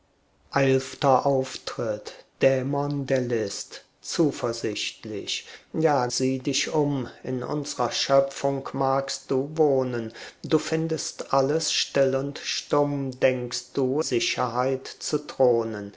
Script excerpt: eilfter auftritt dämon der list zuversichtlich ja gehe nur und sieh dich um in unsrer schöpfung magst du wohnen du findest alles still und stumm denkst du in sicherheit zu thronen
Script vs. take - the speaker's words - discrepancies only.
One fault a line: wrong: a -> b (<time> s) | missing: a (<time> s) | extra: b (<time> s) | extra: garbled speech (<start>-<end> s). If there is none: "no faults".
missing: gehe nur und (6.1 s)
missing: in (14.0 s)